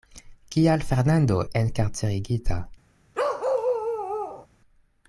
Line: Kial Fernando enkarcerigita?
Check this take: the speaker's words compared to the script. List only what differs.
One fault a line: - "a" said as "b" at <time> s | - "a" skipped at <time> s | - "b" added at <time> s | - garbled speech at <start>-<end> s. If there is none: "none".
none